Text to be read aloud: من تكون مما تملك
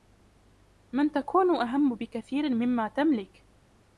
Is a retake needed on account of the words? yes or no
yes